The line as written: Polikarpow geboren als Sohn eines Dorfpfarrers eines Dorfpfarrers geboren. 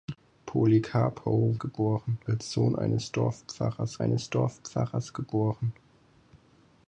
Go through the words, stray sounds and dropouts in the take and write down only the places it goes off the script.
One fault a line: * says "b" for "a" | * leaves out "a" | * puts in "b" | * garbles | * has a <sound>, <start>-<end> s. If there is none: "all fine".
all fine